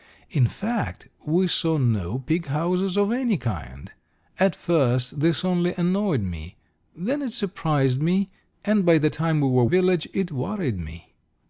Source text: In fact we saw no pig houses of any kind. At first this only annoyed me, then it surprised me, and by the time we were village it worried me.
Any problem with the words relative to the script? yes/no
no